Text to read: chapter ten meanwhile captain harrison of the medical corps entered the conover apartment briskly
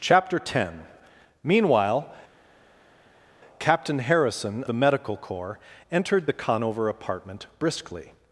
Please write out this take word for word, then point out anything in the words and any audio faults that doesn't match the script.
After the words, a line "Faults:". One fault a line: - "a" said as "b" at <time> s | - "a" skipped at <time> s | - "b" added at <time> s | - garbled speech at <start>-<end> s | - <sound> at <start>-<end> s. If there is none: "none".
chapter ten meanwhile captain harrison the medical corps entered the conover apartment briskly
Faults:
- "of" skipped at 4.6 s